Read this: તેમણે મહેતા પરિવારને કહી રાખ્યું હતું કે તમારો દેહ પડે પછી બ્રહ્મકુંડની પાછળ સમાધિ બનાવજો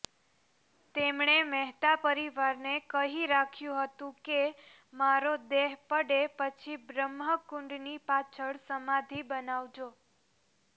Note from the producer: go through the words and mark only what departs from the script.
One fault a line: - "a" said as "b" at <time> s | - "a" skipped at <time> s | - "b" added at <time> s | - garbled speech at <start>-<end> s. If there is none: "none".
- "તમારો" said as "મારો" at 4.9 s